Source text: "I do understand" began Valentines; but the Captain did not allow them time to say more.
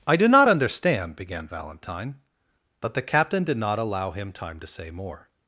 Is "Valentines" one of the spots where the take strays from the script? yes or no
yes